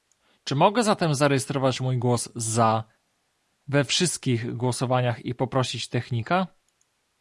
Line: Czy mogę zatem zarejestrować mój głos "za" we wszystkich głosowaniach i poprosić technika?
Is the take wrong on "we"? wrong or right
right